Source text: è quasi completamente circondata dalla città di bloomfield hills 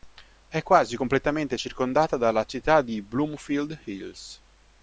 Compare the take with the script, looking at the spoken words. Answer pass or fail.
pass